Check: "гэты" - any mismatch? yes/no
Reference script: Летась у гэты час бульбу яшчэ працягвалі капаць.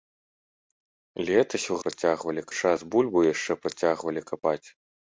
yes